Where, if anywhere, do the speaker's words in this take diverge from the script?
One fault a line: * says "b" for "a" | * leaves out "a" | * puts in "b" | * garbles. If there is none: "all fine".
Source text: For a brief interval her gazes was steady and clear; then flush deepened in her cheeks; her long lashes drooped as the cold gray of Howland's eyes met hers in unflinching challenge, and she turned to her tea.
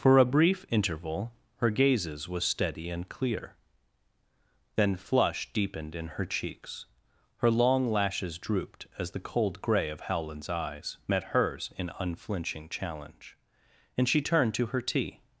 all fine